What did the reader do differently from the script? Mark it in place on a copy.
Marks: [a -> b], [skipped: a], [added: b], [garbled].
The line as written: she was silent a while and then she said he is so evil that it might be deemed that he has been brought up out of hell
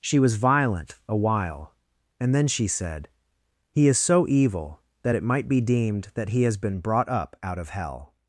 she was [silent -> violent] a while and then she said he is so evil that it might be deemed that he has been brought up out of hell